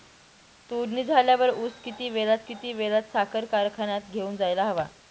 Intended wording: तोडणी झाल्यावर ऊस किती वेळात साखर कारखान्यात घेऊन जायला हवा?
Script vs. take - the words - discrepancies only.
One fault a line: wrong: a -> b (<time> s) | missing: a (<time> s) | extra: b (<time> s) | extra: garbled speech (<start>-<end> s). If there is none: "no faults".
extra: किती वेळात (2.5 s)